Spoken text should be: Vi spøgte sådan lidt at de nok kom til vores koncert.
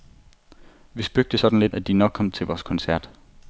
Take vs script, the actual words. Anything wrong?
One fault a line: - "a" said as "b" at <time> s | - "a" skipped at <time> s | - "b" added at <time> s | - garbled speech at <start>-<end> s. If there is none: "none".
none